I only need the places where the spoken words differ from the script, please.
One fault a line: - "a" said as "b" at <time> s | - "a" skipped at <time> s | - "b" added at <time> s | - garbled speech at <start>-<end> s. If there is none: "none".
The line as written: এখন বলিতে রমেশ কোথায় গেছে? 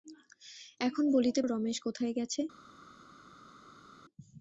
none